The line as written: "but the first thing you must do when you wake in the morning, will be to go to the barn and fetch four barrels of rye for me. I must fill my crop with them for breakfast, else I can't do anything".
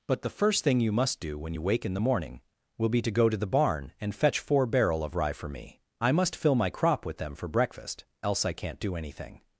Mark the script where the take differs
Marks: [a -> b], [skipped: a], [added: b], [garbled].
"but the first thing you must do when you wake in the morning, will be to go to the barn and fetch four [barrels -> barrel] of rye for me. I must fill my crop with them for breakfast, else I can't do anything".